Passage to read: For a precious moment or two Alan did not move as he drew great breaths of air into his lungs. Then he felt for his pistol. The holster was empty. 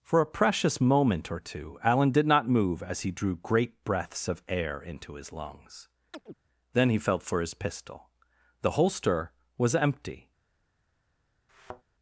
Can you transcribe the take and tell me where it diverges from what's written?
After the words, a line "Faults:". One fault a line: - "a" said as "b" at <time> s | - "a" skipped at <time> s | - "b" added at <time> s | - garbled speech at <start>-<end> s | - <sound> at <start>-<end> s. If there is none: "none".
For a precious moment or two Alan did not move as he drew great breaths of air into his lungs. Then he felt for his pistol. The holster was empty.
Faults:
- chirp at 6.1-6.3 s
- thud at 11.5-11.8 s